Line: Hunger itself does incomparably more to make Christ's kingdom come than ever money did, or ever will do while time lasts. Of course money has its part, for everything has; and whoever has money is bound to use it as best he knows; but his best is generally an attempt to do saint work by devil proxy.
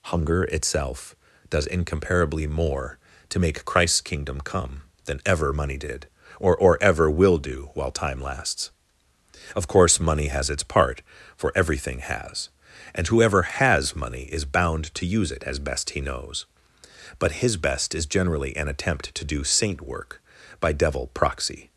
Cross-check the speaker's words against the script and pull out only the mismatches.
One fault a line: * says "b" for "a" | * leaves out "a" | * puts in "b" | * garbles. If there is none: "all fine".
* puts in "or"